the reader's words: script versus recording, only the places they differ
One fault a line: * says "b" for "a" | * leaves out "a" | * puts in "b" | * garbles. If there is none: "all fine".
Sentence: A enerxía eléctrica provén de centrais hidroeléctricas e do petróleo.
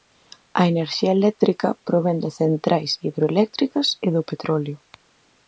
all fine